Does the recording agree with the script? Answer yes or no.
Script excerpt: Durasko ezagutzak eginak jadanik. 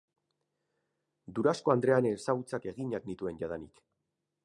no